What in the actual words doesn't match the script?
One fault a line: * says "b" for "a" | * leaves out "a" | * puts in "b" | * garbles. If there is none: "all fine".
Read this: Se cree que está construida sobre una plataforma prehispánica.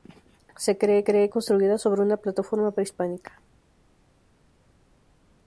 * says "cree" for "está"